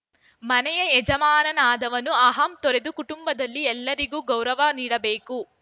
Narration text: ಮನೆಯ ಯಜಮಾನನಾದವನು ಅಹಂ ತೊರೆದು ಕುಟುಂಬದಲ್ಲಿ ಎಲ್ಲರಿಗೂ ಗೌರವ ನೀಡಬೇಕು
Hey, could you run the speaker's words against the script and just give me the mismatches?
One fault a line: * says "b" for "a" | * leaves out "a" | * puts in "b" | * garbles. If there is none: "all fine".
all fine